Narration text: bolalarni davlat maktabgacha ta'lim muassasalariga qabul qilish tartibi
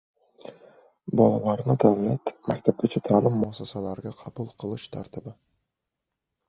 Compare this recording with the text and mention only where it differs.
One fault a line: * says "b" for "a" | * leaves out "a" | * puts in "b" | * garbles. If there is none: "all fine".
all fine